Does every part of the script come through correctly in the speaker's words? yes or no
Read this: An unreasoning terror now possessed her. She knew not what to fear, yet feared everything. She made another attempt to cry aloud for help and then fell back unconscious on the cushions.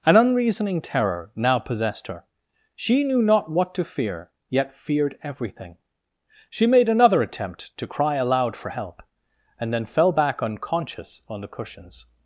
yes